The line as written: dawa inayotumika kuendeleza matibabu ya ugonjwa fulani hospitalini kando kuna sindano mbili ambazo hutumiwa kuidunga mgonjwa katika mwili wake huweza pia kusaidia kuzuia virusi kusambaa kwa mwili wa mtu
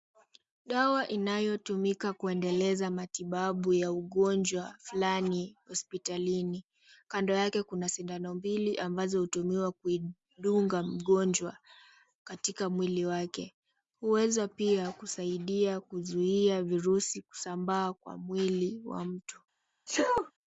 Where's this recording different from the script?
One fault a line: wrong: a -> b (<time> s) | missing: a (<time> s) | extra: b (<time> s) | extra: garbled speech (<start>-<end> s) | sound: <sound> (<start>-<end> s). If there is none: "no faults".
extra: yake (7.3 s)
sound: sneeze (19.9-20.3 s)